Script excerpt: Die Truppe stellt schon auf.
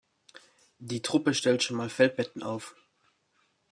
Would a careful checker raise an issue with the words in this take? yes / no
yes